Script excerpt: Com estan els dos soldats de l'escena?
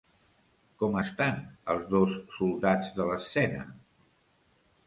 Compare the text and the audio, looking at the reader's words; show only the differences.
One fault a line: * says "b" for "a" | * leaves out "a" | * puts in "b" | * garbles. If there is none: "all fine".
all fine